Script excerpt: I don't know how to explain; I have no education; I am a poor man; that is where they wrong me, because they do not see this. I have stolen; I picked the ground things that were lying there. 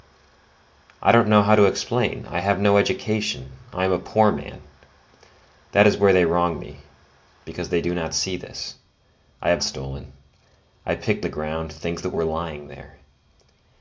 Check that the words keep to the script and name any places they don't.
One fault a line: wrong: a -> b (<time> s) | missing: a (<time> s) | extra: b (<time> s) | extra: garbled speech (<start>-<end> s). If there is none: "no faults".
no faults